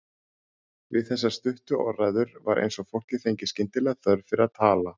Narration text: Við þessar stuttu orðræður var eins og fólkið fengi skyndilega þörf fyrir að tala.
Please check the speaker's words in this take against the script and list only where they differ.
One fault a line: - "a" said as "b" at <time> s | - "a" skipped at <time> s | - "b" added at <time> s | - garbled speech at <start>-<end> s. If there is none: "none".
none